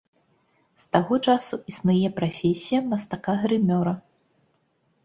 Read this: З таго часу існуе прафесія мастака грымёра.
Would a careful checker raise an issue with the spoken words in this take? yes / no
no